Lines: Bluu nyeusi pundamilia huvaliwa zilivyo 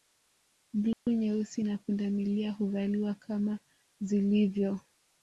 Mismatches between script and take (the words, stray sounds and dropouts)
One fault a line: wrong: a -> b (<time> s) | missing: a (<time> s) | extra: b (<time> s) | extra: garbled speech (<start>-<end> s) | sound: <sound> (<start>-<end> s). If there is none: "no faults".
sound: dropout (0.9-1.1 s)
extra: na (1.6 s)
extra: kama (3.1 s)